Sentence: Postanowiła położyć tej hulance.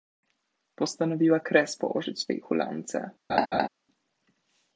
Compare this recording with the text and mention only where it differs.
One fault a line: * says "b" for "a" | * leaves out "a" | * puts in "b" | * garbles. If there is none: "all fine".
* puts in "kres"